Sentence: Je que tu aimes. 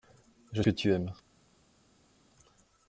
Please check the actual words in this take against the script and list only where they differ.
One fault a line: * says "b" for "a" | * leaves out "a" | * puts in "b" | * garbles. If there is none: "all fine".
all fine